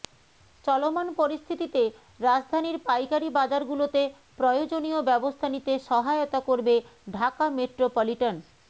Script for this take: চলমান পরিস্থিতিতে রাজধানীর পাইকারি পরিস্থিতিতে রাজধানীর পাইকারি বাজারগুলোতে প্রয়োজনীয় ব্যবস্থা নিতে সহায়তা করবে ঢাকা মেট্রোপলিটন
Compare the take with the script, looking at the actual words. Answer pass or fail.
fail